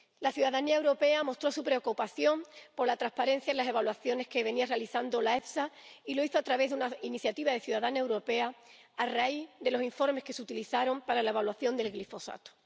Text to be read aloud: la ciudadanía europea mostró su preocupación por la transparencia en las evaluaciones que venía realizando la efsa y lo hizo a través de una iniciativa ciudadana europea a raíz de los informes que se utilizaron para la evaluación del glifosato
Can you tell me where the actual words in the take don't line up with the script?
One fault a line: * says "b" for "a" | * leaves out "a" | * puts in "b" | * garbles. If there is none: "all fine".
all fine